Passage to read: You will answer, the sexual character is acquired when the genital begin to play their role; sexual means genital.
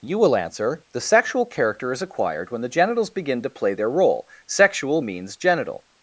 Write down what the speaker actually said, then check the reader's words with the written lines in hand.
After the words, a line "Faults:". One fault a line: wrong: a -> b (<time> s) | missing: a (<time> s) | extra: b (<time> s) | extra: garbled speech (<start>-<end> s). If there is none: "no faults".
You will answer, the sexual character is acquired when the genitals begin to play their role; sexual means genital.
Faults:
wrong: genital -> genitals (2.7 s)